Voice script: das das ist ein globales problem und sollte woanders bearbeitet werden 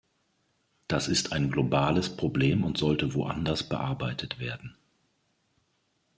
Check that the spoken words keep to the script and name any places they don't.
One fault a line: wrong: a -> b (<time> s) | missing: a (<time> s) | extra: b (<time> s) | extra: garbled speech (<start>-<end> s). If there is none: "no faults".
missing: das (1.1 s)